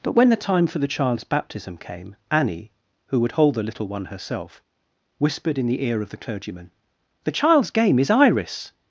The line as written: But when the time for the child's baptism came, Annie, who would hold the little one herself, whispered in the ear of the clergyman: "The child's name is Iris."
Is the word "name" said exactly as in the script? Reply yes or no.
no